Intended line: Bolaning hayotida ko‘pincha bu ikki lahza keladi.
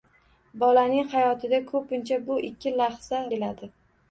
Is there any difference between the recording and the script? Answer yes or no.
no